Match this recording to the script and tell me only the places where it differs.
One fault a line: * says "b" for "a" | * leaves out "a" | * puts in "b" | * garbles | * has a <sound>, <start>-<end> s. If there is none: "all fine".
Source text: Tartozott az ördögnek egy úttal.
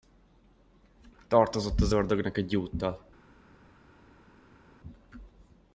all fine